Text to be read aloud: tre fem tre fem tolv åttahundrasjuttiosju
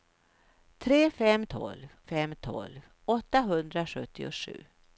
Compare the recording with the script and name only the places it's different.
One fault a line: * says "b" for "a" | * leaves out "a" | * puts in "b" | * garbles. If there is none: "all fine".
* says "tolv" for "tre"